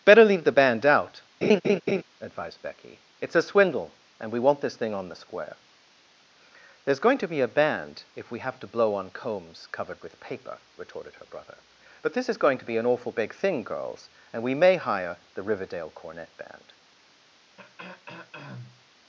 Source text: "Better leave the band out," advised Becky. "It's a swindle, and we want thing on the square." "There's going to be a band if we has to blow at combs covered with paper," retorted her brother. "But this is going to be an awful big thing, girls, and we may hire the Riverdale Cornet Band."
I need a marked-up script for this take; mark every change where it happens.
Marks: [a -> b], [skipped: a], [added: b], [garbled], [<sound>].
"Better leave the band out," [laugh] advised Becky. "It's a swindle, and we want [added: this] thing on the square." "There's going to be a band if we [has -> have] to blow [at -> on] combs covered with paper," retorted her brother. "But this is going to be an awful big thing, girls, and we may hire the Riverdale Cornet Band." [throat clearing]